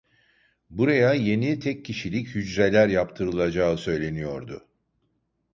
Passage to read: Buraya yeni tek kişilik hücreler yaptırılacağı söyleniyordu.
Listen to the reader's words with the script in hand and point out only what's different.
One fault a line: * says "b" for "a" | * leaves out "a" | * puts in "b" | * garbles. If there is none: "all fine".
all fine